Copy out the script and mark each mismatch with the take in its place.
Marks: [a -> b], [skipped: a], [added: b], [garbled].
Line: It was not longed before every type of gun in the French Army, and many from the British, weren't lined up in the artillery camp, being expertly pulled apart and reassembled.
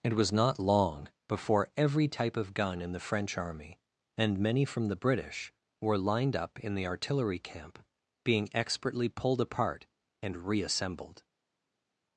It was not [longed -> long] before every type of gun in the French Army, and many from the British, [weren't -> were] lined up in the artillery camp, being expertly pulled apart and reassembled.